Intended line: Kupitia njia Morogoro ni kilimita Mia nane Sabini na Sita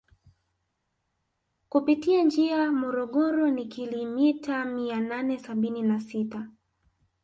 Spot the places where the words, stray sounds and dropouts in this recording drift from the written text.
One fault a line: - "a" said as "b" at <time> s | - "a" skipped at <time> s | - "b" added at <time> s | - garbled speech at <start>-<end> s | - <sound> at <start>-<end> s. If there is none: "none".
none